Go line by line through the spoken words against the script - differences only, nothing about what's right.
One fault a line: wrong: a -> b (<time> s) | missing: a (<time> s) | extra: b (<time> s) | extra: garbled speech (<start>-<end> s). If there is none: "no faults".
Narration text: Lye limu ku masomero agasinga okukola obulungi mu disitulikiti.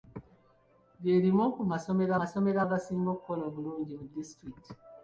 extra: masomero (2.2 s)